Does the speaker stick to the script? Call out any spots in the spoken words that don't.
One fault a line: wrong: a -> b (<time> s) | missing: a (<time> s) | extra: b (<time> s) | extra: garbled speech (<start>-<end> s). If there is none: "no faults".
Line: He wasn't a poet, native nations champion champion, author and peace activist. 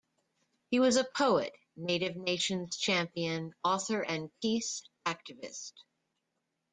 wrong: wasn't -> was (0.8 s)
missing: champion (3.5 s)